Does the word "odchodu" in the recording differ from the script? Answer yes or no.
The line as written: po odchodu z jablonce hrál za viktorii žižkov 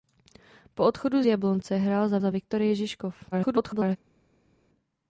no